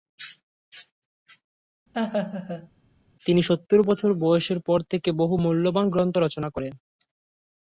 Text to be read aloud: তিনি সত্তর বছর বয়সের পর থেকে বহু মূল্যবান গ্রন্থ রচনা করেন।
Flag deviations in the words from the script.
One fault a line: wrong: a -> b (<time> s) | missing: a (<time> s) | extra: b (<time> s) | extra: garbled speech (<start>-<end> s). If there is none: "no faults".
no faults